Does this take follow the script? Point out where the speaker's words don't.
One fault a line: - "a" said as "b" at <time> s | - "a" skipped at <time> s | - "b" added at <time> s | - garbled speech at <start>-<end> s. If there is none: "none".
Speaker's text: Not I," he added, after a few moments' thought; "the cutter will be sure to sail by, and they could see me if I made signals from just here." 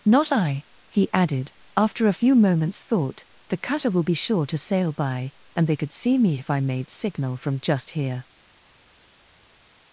- "signals" said as "signal" at 6.9 s